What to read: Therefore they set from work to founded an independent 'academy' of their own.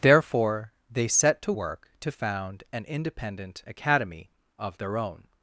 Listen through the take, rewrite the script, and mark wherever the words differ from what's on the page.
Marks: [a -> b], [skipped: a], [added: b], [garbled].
Therefore they set [from -> to] work to [founded -> found] an independent 'academy' of their own.